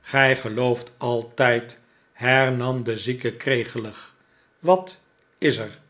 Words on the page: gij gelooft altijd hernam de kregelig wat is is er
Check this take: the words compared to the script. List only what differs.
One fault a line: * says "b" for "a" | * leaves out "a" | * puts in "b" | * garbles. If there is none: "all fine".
* puts in "zieke"
* leaves out "is"